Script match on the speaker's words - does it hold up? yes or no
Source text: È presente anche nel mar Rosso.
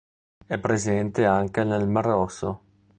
yes